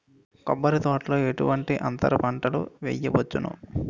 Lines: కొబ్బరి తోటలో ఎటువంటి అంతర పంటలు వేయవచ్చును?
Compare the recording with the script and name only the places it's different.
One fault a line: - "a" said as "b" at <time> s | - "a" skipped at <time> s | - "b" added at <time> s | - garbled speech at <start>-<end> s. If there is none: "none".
none